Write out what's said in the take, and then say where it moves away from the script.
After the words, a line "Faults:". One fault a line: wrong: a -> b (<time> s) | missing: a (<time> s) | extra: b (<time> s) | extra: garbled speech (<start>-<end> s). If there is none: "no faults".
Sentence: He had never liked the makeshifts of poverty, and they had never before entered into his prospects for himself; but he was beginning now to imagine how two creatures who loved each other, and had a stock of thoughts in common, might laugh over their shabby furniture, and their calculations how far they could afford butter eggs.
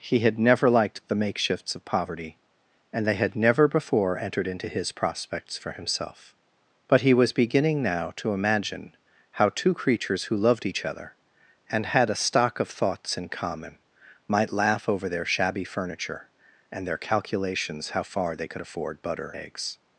He had never liked the makeshifts of poverty, and they had never before entered into his prospects for himself; but he was beginning now to imagine how two creatures who loved each other, and had a stock of thoughts in common, might laugh over their shabby furniture, and their calculations how far they could afford butter eggs.
Faults:
no faults